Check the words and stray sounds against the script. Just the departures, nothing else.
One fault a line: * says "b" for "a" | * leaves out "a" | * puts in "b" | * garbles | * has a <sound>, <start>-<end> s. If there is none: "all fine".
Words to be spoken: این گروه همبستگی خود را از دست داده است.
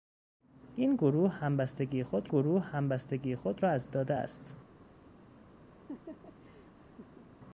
* puts in "گروه همبستگی خود"
* leaves out "دست"
* has a laugh, 5.7-7.3 s